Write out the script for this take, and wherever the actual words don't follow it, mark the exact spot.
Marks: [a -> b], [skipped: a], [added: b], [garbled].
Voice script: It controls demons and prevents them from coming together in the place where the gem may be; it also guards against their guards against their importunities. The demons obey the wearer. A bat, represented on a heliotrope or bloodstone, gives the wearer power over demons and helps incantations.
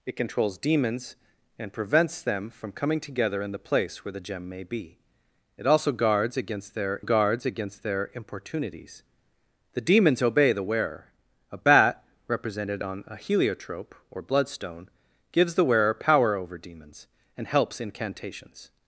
It controls demons and prevents them from coming together in the place where the gem may be; it also guards against their guards against their importunities. The demons obey the wearer. A bat, represented on a heliotrope or bloodstone, gives the wearer power over demons and helps incantations.